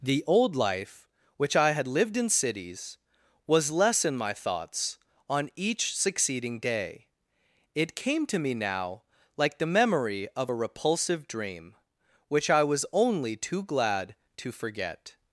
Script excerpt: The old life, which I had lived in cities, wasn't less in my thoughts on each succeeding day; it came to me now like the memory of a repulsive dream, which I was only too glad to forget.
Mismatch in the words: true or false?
true